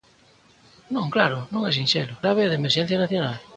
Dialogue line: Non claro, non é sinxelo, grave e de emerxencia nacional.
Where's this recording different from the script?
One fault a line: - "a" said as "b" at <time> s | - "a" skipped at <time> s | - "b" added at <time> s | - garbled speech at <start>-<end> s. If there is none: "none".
none